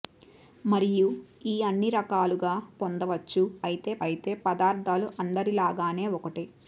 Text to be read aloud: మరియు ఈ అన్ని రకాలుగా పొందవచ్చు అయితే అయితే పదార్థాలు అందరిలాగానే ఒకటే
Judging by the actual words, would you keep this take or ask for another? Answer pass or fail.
pass